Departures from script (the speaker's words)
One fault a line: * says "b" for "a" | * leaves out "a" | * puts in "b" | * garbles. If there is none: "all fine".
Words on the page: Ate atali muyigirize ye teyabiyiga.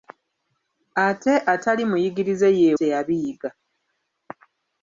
all fine